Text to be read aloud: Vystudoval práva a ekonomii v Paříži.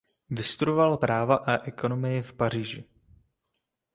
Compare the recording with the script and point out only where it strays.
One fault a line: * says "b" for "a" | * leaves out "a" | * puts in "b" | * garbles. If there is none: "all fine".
all fine